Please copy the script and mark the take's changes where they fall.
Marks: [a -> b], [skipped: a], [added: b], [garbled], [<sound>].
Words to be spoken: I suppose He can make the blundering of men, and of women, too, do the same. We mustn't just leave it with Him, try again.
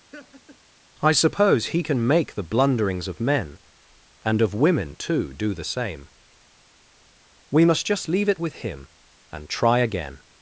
[laugh] I suppose He can make the [blundering -> blunderings] of men, and of women, too, do the same. We [mustn't -> must] just leave it with Him, [added: and] try again.